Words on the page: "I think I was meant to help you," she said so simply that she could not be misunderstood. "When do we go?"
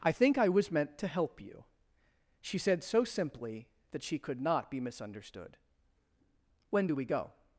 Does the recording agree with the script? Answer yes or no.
yes